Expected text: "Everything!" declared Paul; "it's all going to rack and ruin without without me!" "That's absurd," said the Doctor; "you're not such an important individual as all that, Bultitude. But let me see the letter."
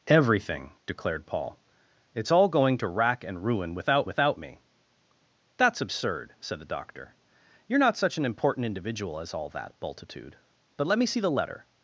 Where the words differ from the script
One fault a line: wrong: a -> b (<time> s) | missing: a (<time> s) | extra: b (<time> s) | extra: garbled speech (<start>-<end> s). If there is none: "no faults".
no faults